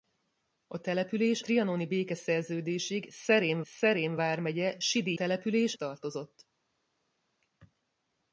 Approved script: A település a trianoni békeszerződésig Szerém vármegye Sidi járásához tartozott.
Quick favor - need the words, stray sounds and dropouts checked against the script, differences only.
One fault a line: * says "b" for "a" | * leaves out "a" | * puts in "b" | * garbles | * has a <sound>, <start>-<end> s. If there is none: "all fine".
* leaves out "a"
* puts in "Szerém"
* says "település" for "járásához"